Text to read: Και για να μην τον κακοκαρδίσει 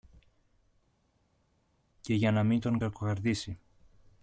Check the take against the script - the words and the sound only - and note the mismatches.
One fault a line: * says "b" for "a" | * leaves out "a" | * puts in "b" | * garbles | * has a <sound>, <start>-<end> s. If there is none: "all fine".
all fine